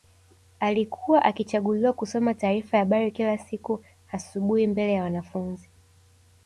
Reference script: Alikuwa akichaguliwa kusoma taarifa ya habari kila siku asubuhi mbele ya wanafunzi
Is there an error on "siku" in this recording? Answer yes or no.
no